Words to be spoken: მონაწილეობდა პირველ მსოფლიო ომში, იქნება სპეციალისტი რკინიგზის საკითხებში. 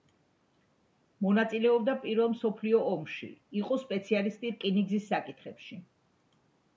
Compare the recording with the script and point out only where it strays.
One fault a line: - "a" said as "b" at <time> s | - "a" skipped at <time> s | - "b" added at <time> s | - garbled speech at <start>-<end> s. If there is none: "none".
- "იქნება" said as "იყო" at 3.6 s